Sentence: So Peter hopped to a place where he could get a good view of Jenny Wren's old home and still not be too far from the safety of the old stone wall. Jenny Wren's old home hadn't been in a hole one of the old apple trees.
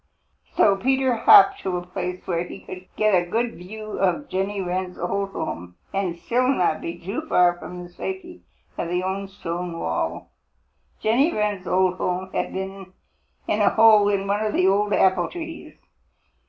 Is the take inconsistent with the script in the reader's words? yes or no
yes